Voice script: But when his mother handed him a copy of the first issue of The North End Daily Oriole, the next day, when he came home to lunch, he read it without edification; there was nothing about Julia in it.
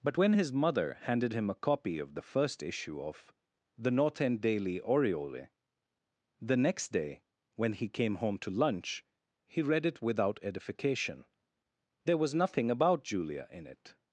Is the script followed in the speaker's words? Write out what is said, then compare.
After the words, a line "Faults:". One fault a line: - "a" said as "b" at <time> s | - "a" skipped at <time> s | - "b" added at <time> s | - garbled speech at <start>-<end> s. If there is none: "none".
But when his mother handed him a copy of the first issue of The North End Daily Oriole, the next day, when he came home to lunch, he read it without edification; there was nothing about Julia in it.
Faults:
none